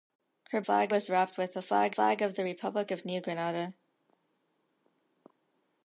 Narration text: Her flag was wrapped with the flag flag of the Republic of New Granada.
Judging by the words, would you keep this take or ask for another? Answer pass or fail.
pass